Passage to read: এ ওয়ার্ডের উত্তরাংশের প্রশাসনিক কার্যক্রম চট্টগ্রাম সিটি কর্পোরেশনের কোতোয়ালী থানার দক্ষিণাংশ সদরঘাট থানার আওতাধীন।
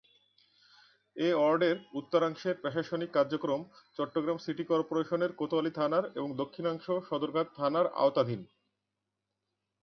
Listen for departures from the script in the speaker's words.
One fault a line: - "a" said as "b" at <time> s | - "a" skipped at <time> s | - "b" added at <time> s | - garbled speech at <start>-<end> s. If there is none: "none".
- "এবং" added at 6.1 s